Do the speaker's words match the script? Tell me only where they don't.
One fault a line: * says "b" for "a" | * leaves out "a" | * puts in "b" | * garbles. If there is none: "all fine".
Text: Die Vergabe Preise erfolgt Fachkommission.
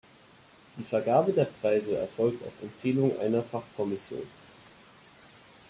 * puts in "der"
* puts in "auf Empfehlung einer"